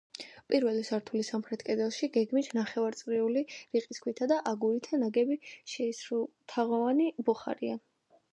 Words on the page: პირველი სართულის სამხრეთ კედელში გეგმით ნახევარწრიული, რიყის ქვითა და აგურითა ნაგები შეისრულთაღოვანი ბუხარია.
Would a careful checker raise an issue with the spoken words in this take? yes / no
no